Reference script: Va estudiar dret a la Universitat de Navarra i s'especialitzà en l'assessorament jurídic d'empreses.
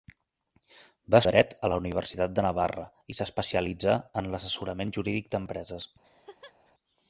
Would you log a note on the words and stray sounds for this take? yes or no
yes